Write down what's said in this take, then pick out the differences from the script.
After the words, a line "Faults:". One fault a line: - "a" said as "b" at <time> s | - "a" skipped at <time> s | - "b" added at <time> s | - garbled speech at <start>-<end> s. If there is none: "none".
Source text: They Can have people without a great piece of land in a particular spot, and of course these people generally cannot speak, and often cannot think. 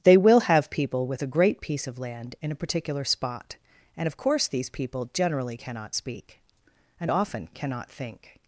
They WILL have people with a great piece of land in a particular spot, and of course these people generally cannot speak, and often cannot think.
Faults:
- "Can" said as "WILL" at 0.2 s
- "without" said as "with" at 1.1 s